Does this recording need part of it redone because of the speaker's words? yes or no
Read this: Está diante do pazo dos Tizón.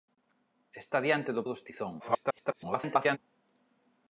yes